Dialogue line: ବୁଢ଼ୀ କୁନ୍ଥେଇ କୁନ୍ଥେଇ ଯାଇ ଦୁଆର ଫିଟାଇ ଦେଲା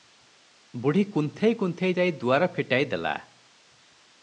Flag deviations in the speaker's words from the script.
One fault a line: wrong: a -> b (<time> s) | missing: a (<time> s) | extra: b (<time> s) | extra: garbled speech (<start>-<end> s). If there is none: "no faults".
no faults